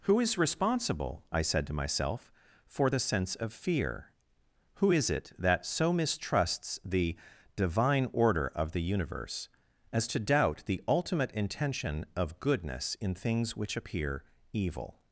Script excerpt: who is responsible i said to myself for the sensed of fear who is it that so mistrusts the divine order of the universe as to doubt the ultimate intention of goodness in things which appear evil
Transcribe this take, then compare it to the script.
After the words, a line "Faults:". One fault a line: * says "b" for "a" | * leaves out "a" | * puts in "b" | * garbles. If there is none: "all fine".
who is responsible i said to myself for the sense of fear who is it that so mistrusts the divine order of the universe as to doubt the ultimate intention of goodness in things which appear evil
Faults:
* says "sense" for "sensed"